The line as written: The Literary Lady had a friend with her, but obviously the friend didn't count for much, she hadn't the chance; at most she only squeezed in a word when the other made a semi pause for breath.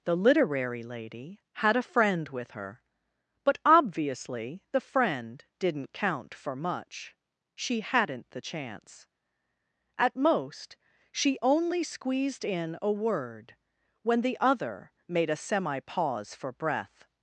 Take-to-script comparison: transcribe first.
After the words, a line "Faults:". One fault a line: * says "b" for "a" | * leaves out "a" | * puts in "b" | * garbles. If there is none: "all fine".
The Literary Lady had a friend with her, but obviously the friend didn't count for much, she hadn't the chance; at most she only squeezed in a word when the other made a semi pause for breath.
Faults:
all fine